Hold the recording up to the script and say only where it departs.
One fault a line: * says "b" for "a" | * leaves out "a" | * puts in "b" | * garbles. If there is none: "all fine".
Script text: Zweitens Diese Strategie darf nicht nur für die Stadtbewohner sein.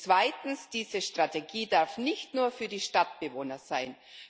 all fine